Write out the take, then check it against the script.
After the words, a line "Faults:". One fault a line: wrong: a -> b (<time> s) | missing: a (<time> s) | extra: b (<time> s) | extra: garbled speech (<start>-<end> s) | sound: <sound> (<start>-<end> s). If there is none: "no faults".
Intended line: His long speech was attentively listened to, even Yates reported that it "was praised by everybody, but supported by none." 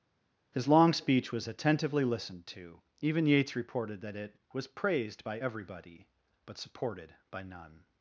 His long speech was attentively listened to, even Yates reported that it "was praised by everybody, but supported by none."
Faults:
no faults